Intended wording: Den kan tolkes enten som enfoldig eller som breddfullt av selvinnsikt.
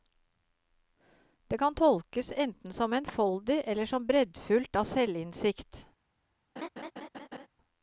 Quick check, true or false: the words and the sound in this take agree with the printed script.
false